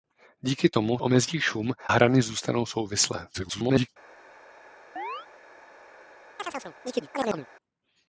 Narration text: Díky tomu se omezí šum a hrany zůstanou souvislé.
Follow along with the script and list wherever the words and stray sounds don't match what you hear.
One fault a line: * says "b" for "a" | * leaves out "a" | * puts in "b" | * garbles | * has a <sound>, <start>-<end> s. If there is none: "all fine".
* leaves out "se"
* leaves out "a"
* garbles
* has a chirp, 5.0-5.3 s
* has a chirp, 6.4-7.5 s